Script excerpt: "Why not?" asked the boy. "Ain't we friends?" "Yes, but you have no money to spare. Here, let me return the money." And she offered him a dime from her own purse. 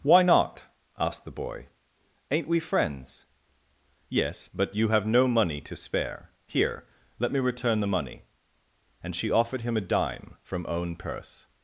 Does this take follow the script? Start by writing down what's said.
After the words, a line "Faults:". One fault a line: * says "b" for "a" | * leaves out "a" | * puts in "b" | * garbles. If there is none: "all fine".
"Why not?" asked the boy. "Ain't we friends?" "Yes, but you have no money to spare. Here, let me return the money." And she offered him a dime from own purse.
Faults:
* leaves out "her"